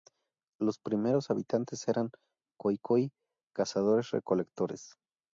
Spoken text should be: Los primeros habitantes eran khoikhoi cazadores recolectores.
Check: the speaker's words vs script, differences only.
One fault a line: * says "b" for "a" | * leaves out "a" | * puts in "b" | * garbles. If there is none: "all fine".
all fine